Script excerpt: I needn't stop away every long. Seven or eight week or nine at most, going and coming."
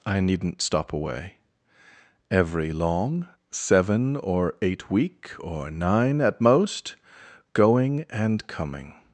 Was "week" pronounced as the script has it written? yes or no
yes